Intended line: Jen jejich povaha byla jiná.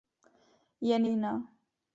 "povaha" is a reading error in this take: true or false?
true